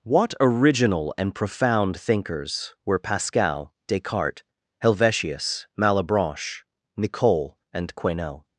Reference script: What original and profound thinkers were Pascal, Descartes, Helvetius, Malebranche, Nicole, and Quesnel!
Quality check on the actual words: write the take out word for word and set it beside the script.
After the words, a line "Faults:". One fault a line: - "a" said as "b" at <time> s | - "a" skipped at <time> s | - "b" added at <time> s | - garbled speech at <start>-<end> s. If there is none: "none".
What original and profound thinkers were Pascal, Descartes, Helvetius, Malebranche, Nicole, and Quesnel!
Faults:
none